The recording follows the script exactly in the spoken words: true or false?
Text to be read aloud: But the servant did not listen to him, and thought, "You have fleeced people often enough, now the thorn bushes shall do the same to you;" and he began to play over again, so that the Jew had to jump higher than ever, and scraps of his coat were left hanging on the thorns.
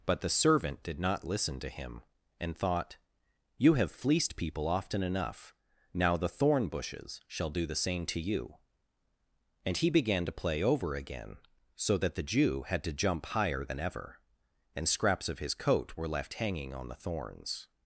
true